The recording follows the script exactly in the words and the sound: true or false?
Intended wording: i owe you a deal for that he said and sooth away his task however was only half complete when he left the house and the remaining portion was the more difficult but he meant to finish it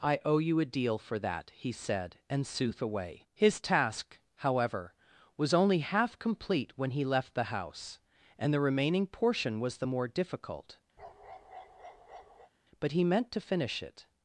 false